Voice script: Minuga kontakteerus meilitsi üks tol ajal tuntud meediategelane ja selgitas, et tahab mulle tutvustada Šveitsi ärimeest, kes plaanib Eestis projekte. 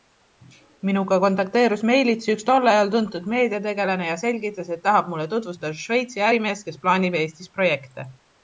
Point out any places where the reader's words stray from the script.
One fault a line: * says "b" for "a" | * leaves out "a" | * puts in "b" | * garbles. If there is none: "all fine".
all fine